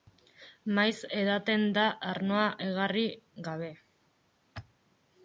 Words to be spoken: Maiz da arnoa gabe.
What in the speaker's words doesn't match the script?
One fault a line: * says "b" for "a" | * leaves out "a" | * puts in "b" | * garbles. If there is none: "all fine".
* puts in "edaten"
* puts in "egarri"